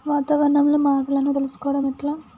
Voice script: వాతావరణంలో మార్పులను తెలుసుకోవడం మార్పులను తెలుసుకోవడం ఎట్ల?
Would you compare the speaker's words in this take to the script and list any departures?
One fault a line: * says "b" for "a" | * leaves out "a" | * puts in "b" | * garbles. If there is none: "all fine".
* leaves out "మార్పులను తెలుసుకోవడం"